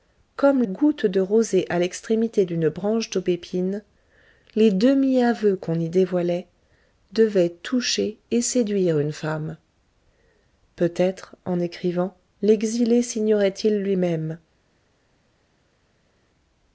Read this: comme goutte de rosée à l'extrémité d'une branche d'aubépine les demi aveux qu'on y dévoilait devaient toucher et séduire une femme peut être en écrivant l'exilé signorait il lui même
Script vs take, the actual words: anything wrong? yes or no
no